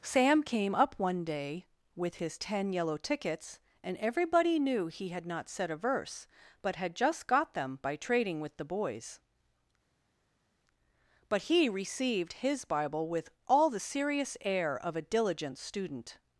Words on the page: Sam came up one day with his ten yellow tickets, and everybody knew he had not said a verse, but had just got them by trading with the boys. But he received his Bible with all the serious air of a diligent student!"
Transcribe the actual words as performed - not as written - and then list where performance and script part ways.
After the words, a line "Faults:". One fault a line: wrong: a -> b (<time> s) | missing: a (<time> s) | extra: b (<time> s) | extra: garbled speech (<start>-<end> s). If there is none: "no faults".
Sam came up one day with his ten yellow tickets, and everybody knew he had not said a verse, but had just got them by trading with the boys. But he received his Bible with all the serious air of a diligent student!"
Faults:
no faults